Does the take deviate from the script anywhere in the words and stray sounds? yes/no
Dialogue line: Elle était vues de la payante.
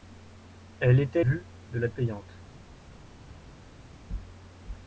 no